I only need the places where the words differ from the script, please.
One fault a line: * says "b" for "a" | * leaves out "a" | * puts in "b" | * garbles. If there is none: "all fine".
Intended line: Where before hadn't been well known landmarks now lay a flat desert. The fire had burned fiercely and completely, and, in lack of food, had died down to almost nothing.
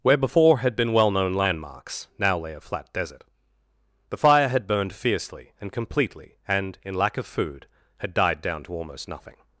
* says "had" for "hadn't"